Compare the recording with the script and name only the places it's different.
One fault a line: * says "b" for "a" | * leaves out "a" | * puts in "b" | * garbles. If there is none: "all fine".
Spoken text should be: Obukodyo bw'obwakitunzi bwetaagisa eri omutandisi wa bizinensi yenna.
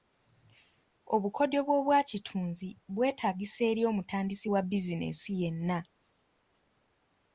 all fine